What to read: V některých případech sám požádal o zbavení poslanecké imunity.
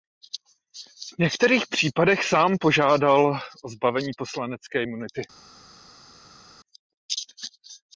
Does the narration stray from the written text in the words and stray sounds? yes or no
no